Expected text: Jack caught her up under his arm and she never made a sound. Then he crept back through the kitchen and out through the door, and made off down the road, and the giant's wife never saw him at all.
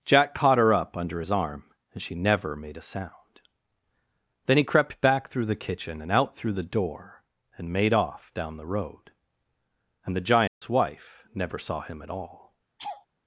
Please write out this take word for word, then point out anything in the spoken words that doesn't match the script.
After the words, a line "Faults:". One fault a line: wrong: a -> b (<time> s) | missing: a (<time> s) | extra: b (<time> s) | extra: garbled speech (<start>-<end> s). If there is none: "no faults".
Jack caught her up under his arm and she never made a sound. Then he crept back through the kitchen and out through the door, and made off down the road, and the giant's wife never saw him at all.
Faults:
no faults